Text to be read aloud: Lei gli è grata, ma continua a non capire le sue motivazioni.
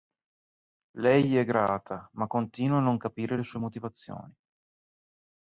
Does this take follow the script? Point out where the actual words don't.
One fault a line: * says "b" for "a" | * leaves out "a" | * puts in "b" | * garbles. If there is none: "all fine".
all fine